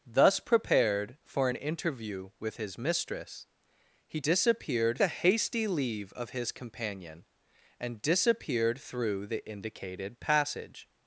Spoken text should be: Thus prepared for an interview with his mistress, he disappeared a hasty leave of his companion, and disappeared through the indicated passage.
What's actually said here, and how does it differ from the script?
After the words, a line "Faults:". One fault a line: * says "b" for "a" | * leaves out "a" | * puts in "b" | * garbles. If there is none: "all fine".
Thus prepared for an interview with his mistress, he disappeared a hasty leave of his companion, and disappeared through the indicated passage.
Faults:
all fine